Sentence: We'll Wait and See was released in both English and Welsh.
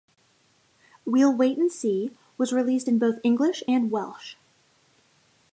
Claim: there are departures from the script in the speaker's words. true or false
false